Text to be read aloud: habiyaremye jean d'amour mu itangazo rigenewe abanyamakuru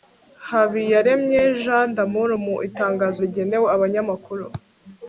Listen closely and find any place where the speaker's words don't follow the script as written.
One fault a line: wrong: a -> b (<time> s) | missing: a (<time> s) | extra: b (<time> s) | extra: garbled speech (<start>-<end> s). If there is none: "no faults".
no faults